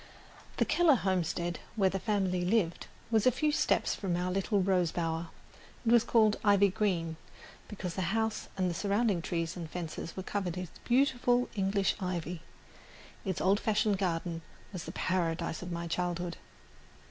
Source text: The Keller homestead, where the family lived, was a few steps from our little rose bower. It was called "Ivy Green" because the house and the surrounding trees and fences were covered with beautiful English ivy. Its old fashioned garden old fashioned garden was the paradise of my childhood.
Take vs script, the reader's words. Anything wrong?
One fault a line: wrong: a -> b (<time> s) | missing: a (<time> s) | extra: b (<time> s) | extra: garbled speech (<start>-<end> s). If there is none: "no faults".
missing: old fashioned garden (14.4 s)